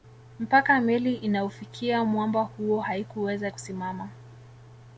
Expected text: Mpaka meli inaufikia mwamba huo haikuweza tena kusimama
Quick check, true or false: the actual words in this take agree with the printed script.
false